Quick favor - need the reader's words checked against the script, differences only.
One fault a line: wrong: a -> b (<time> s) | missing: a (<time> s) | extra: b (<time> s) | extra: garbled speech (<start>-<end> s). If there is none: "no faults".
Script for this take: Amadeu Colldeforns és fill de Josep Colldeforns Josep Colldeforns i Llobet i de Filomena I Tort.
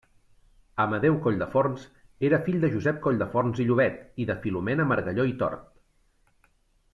wrong: és -> era (2.3 s)
missing: Josep Colldeforns (3.6 s)
extra: Margalló (4.9 s)